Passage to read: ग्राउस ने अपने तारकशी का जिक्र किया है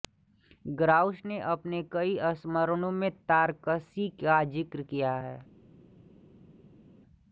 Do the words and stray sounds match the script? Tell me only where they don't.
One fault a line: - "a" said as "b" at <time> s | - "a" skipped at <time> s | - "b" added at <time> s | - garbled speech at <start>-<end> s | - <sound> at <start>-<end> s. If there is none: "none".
- "कई संस्मरणों में" added at 1.9 s